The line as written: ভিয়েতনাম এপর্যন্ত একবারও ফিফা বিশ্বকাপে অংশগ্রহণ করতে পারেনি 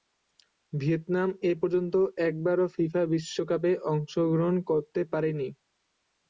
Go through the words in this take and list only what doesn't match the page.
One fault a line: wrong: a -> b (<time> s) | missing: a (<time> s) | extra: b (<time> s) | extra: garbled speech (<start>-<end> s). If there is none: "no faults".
no faults